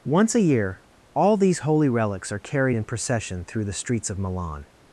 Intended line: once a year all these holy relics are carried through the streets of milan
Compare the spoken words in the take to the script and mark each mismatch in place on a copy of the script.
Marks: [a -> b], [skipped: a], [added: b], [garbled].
once a year all these holy relics are carried [added: in procession] through the streets of milan